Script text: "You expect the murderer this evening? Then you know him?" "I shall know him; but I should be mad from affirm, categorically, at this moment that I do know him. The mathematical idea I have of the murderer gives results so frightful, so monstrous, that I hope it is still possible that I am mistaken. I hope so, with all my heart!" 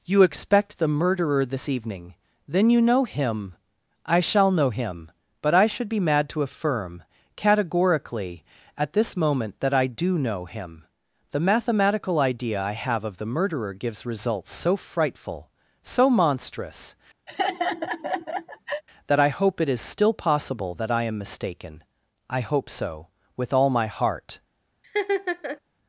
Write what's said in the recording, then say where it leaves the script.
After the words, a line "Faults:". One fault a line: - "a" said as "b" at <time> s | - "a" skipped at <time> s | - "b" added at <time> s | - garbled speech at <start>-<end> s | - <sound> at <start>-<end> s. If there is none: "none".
"You expect the murderer this evening? Then you know him?" "I shall know him; but I should be mad to affirm, categorically, at this moment that I do know him. The mathematical idea I have of the murderer gives results so frightful, so monstrous, that I hope it is still possible that I am mistaken. I hope so, with all my heart!"
Faults:
- "from" said as "to" at 6.3 s
- laugh at 17.3-18.8 s
- laugh at 24.8-25.6 s